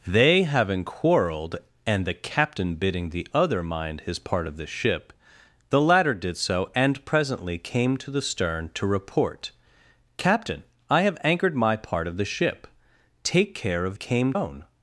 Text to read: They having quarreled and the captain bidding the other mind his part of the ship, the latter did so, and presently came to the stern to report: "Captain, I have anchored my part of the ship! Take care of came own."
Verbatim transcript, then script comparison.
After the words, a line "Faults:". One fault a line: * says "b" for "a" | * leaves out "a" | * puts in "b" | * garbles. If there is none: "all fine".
They having quarreled and the captain bidding the other mind his part of the ship, the latter did so, and presently came to the stern to report: "Captain, I have anchored my part of the ship! Take care of came own."
Faults:
all fine